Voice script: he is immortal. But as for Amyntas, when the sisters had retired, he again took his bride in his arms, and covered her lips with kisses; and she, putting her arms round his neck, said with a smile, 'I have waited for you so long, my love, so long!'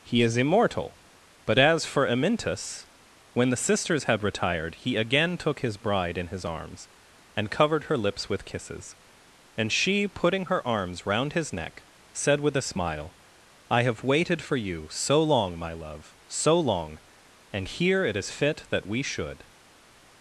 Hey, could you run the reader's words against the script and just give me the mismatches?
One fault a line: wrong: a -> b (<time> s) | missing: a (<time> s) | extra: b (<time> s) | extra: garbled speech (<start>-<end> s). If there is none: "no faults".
extra: And here it is fit that we should (17.5 s)